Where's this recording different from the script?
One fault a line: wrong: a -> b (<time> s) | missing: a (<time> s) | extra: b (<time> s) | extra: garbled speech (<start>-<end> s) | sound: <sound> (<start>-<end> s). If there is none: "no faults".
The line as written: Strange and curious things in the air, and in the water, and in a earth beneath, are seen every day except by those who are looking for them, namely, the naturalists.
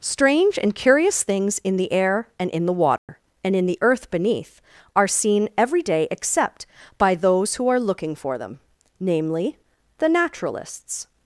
sound: dropout (3.0-3.1 s)
wrong: a -> the (3.7 s)